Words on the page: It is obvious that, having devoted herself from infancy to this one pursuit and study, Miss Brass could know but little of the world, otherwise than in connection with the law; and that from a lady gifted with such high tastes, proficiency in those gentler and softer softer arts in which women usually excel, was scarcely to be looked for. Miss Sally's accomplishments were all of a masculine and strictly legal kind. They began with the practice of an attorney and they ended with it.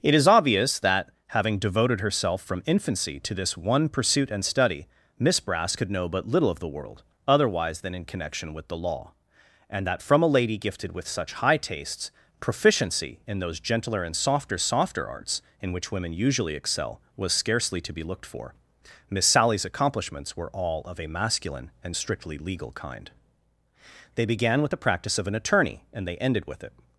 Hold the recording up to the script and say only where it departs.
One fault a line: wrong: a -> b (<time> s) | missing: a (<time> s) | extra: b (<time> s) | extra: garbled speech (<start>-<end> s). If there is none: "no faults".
no faults